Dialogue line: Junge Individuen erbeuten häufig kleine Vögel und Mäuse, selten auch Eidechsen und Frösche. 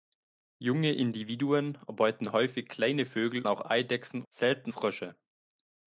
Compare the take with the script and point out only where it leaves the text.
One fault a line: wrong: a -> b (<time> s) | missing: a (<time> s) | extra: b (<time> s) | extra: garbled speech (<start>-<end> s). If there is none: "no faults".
missing: und Mäuse selten (3.4 s)
wrong: und -> selten (4.3 s)